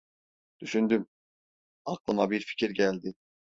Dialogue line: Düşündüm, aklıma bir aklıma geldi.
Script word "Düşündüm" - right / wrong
right